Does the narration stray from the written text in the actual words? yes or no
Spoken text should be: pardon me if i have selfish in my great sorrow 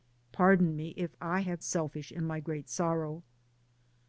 no